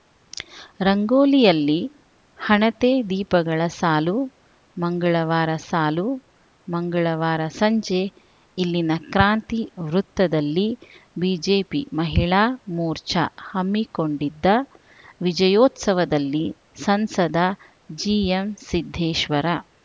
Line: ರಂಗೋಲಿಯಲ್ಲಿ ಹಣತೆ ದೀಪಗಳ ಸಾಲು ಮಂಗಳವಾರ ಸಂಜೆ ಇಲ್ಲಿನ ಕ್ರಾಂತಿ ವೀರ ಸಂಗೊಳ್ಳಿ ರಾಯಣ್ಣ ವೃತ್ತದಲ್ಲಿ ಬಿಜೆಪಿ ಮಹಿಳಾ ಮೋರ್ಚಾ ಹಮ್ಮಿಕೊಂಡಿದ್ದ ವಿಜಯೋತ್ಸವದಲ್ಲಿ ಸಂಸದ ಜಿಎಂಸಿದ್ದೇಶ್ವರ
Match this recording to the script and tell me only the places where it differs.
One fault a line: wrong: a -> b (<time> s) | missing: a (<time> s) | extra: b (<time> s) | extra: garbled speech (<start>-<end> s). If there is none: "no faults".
extra: ಸಾಲು ಮಂಗಳವಾರ (5.7 s)
missing: ವೀರ ಸಂಗೊಳ್ಳಿ ರಾಯಣ್ಣ (9.6 s)